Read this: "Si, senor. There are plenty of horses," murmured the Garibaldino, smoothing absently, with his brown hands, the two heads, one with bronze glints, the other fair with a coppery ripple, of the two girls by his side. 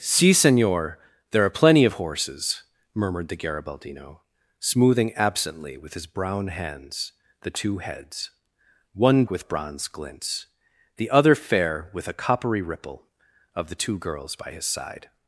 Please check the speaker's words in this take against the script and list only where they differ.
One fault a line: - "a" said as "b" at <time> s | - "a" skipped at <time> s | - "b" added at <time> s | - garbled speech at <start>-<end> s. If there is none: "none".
none